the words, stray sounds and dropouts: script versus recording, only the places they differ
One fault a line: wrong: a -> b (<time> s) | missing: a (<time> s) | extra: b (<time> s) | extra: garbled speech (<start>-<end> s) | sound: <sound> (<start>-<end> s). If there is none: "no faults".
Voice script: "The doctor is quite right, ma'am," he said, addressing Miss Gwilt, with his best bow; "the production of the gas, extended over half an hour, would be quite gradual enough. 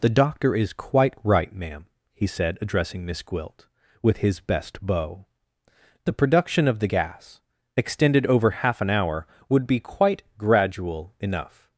no faults